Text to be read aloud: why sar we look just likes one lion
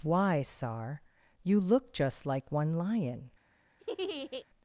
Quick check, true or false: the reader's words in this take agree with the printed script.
false